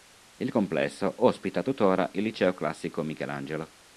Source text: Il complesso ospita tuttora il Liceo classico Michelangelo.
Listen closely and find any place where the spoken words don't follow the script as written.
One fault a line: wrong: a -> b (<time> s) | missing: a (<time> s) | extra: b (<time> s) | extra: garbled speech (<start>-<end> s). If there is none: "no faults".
no faults